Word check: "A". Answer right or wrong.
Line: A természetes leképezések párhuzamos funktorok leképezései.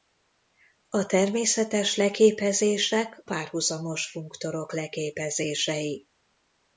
right